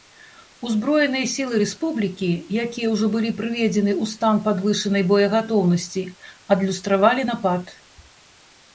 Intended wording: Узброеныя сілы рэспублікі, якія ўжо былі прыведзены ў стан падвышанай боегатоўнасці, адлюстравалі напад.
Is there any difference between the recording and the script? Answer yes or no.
no